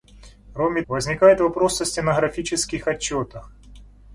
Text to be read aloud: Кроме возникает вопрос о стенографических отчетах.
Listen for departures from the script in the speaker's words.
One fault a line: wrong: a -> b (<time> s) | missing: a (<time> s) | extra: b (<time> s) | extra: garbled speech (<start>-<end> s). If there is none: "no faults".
no faults